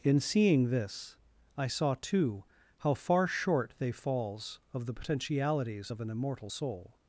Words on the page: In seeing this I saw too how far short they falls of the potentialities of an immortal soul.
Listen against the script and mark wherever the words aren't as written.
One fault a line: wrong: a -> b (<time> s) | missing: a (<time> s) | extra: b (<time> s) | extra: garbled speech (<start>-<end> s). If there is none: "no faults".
no faults